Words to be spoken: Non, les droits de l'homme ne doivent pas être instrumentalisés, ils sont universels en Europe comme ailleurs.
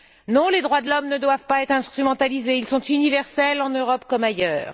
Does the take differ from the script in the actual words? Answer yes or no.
no